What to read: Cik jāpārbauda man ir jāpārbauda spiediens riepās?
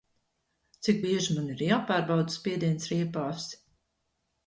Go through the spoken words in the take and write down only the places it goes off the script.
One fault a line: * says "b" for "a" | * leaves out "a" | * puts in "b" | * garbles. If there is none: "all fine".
* says "bieži" for "jāpārbauda"